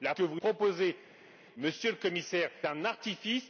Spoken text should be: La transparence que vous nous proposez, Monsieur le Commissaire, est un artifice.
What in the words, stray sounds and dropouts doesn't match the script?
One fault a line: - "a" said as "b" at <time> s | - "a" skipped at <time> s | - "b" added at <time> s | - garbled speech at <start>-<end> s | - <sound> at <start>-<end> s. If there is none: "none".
- "transparence" skipped at 0.1 s
- "nous" skipped at 0.4 s
- "est" skipped at 2.5 s